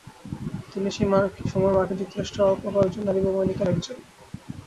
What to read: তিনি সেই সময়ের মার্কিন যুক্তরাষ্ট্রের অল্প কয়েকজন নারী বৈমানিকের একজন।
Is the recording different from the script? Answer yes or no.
no